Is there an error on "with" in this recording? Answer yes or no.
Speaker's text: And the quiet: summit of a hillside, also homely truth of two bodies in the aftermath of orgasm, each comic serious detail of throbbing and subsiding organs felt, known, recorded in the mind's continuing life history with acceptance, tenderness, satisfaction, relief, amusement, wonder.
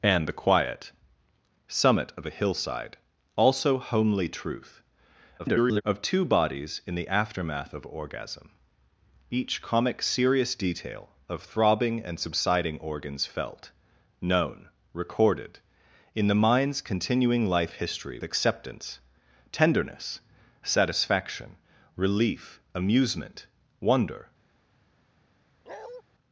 yes